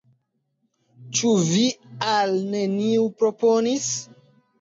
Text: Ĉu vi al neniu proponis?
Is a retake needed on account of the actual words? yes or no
no